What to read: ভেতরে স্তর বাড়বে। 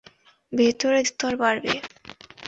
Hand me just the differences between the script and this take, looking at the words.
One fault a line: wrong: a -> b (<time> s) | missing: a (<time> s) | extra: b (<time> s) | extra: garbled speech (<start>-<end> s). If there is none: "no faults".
no faults